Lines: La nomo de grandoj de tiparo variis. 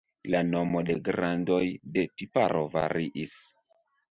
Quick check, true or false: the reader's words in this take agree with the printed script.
true